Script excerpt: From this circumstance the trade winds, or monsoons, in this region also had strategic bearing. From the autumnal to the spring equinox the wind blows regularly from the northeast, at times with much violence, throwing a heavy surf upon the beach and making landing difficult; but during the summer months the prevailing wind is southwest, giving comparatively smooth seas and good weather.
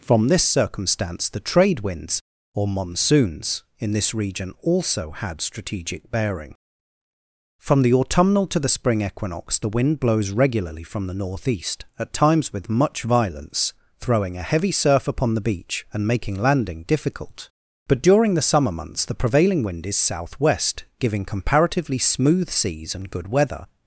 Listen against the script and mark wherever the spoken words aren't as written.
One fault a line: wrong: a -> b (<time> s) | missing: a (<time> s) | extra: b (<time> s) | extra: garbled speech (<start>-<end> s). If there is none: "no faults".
no faults